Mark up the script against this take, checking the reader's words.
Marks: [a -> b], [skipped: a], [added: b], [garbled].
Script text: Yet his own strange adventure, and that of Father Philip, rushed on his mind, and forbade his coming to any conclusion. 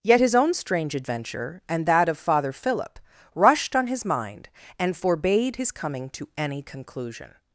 Yet his own strange adventure, and that of Father Philip, rushed on his mind, and forbade his coming to any conclusion.